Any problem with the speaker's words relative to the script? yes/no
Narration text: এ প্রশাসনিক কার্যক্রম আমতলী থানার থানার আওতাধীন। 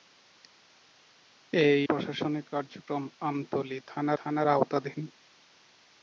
no